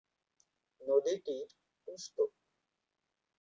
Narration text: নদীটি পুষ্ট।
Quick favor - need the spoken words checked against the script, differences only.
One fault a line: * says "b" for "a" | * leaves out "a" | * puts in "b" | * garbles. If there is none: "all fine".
all fine